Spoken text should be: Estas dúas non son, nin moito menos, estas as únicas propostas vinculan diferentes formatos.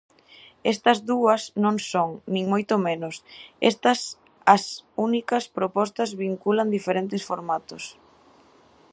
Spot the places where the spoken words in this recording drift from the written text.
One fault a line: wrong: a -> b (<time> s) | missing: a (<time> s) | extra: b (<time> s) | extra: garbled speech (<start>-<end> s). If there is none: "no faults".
no faults